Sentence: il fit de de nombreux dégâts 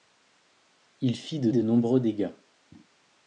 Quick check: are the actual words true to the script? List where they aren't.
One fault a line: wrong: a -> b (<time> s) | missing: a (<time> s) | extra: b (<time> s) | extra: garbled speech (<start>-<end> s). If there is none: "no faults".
no faults